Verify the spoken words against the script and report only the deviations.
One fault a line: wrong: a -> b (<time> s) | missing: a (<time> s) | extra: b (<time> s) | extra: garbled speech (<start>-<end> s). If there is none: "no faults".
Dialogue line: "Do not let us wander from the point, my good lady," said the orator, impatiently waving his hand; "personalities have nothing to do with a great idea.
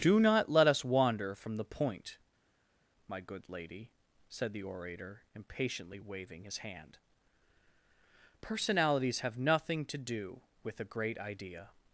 no faults